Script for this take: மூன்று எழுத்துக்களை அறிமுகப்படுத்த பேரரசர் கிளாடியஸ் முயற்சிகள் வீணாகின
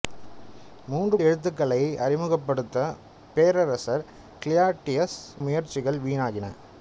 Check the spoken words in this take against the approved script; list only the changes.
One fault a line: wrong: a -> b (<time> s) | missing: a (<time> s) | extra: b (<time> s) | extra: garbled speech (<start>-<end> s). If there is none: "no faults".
no faults